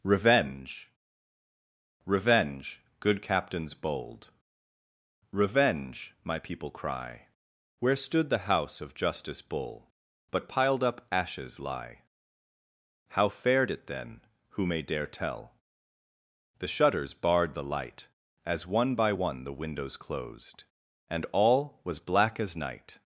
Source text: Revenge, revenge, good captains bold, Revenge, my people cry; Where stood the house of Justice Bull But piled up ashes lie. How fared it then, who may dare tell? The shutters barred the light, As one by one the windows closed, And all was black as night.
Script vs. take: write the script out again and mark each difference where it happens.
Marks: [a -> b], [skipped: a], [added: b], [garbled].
Revenge, revenge, good captains bold, Revenge, my people cry; Where stood the house of Justice Bull But piled up ashes lie. How fared it then, who may dare tell? The shutters barred the light, As one by one the windows closed, And all was black as night.